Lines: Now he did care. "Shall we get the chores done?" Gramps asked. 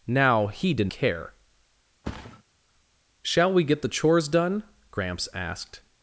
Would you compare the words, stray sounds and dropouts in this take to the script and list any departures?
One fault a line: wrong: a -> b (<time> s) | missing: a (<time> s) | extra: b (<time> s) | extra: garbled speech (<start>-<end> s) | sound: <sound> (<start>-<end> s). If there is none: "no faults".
sound: thud (2.0-2.4 s)